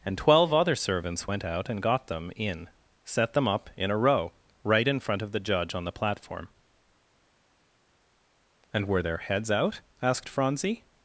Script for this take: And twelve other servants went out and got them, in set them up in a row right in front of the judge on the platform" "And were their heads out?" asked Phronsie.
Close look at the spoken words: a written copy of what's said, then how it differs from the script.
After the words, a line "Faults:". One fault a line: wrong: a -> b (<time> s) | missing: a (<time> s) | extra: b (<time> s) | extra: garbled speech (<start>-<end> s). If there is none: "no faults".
And twelve other servants went out and got them, in set them up in a row right in front of the judge on the platform" "And were their heads out?" asked Phronsie.
Faults:
no faults